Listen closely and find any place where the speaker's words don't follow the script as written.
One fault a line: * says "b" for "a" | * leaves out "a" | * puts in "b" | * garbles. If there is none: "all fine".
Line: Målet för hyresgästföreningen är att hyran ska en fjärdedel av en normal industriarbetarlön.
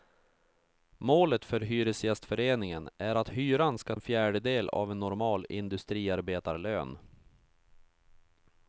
all fine